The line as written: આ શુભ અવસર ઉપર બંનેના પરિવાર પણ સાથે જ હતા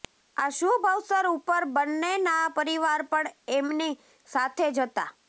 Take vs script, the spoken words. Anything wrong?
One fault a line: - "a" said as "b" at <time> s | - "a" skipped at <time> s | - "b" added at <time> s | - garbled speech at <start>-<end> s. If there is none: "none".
- "એમની" added at 3.5 s